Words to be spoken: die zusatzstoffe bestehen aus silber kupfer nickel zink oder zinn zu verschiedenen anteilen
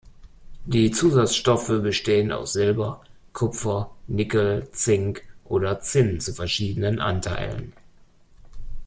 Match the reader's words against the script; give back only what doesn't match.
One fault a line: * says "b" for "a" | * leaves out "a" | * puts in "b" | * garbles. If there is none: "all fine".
all fine